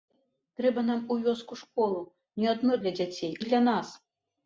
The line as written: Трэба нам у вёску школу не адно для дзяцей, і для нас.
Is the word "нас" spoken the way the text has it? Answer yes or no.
yes